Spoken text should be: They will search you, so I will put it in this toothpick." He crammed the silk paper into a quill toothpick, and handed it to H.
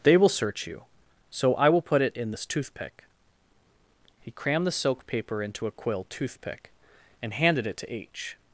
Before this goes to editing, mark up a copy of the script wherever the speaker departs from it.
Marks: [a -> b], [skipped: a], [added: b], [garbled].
They will search you, so I will put it in this toothpick." He crammed the silk paper into a quill toothpick, and handed it to H.